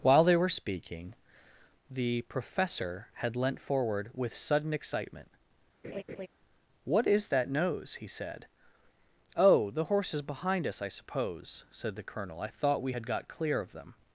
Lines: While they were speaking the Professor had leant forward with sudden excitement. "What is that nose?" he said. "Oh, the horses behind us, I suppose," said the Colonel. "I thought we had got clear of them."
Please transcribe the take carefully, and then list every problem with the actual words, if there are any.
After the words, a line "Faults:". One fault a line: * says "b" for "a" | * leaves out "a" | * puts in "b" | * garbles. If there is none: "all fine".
While they were speaking the Professor had leant forward with sudden excitement. "What is that nose?" he said. "Oh, the horses behind us, I suppose," said the Colonel. "I thought we had got clear of them."
Faults:
all fine